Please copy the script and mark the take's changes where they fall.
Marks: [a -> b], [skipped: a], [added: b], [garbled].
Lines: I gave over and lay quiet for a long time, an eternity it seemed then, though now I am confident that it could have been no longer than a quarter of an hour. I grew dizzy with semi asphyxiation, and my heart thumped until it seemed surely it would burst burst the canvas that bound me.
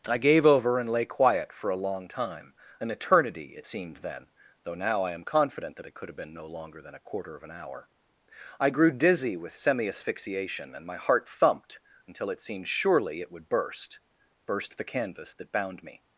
I gave over and lay quiet for a long time, an eternity it seemed then, though now I am confident that it could have been no longer than a quarter of an hour. I grew dizzy with semi asphyxiation, and my heart thumped until it seemed surely it would burst burst the canvas that bound me.